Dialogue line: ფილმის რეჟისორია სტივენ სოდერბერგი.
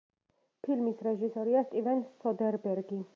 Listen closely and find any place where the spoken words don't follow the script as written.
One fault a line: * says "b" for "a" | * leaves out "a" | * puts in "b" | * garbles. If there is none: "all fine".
all fine